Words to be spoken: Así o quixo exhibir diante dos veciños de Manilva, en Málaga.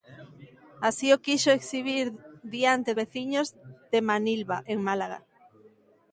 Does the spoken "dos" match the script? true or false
false